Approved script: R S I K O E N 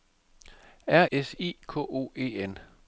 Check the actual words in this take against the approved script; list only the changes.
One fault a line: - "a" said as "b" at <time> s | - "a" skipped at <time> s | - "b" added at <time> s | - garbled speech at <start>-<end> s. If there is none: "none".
none